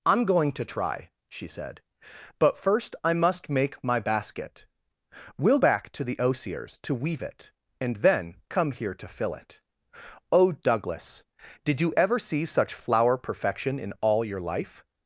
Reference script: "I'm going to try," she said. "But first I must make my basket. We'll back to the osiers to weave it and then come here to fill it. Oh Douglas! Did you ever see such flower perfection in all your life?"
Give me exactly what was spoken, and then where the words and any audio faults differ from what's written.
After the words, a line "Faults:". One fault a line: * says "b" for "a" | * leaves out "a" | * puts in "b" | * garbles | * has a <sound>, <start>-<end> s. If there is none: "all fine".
"I'm going to try," she said. "But first I must make my basket. We'll back to the osiers to weave it and then come here to fill it. Oh Douglas! Did you ever see such flower perfection in all your life?"
Faults:
all fine